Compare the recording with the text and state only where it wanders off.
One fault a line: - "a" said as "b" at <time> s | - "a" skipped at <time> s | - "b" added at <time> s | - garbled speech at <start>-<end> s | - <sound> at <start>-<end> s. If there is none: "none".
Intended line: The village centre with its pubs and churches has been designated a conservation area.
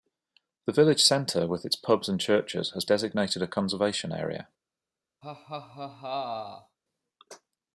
- "been" skipped at 2.9 s
- laugh at 5.2-6.8 s